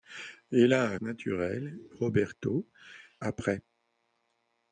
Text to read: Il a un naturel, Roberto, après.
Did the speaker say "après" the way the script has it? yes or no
yes